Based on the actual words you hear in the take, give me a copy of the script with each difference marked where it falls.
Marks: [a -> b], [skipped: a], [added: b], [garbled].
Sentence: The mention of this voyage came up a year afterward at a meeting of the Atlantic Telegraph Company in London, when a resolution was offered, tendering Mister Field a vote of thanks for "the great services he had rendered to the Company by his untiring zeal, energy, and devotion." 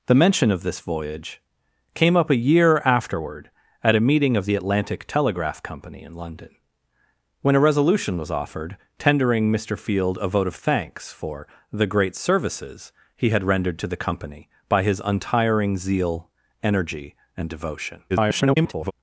The mention of this voyage came up a year afterward at a meeting of the Atlantic Telegraph Company in London, when a resolution was offered, tendering Mister Field a vote of thanks for "the great services he had rendered to the Company by his untiring zeal, energy, and devotion." [garbled]